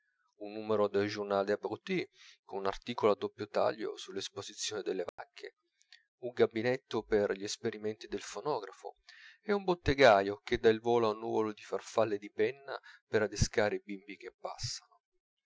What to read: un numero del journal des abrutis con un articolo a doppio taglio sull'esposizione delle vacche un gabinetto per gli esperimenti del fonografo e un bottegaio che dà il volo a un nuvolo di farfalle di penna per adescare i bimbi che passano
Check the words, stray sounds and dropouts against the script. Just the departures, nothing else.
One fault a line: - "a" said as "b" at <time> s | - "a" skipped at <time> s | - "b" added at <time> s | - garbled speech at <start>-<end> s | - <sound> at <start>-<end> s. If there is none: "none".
- dropout at 5.1-5.2 s